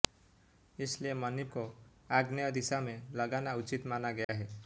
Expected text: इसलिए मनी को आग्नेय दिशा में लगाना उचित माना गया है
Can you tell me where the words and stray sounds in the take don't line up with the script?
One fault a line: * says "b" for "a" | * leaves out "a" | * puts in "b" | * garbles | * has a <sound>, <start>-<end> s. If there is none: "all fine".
* has a dropout, 4.2-4.3 s